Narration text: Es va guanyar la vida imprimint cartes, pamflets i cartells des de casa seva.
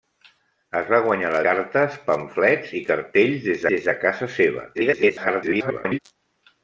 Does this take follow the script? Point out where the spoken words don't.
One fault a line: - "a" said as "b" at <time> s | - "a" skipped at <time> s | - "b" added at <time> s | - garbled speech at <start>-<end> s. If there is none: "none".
- "vida imprimint" skipped at 1.4 s
- "des" added at 3.7 s
- garbled speech at 4.7-6.0 s